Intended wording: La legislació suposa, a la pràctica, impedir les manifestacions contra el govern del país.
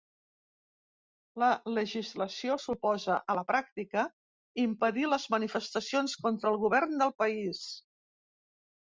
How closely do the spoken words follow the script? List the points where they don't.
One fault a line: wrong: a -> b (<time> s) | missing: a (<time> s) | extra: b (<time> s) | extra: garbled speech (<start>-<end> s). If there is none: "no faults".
no faults